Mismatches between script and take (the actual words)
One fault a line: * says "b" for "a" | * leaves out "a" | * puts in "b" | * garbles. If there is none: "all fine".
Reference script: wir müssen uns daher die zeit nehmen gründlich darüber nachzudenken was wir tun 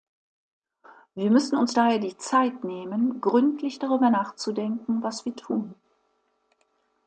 all fine